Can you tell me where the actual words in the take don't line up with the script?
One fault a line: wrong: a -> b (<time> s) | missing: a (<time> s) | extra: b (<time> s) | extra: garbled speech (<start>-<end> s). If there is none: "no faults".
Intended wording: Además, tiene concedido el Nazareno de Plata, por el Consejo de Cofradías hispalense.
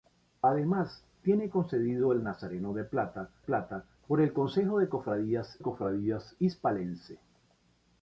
extra: Plata (3.4 s)
extra: Cofradías (5.6 s)